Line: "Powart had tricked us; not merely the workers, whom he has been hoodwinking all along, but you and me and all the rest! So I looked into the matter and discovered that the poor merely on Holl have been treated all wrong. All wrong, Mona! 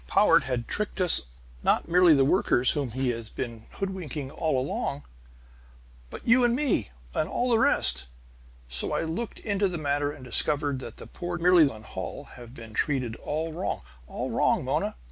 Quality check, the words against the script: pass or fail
pass